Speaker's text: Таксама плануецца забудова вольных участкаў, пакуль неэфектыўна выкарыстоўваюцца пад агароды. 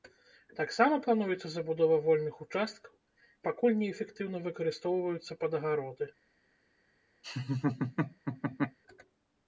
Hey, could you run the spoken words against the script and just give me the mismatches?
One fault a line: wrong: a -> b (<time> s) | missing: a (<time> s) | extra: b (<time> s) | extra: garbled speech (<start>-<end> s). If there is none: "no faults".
no faults